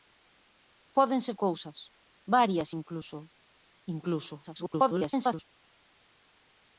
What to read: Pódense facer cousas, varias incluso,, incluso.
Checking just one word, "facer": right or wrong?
wrong